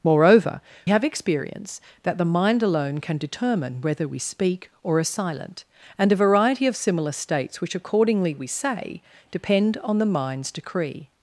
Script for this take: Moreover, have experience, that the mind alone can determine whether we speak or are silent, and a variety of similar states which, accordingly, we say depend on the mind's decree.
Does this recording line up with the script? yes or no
yes